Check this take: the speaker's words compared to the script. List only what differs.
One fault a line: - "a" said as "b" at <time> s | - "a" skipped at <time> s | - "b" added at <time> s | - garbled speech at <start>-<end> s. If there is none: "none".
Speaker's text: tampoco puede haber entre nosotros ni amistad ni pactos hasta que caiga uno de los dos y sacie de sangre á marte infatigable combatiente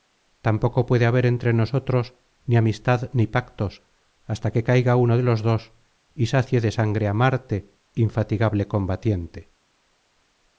none